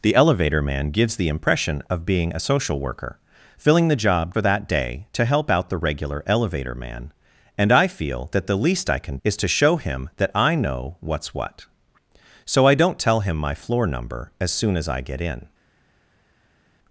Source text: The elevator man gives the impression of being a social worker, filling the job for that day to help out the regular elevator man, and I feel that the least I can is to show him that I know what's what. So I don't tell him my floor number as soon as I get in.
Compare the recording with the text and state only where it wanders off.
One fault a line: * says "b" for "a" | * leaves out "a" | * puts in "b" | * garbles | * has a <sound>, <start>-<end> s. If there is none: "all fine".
all fine